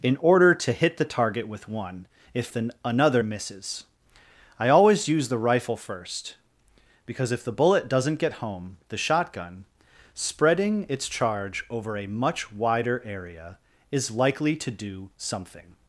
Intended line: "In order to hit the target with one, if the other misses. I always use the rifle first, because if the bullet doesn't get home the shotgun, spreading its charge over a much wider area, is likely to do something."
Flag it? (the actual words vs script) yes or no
yes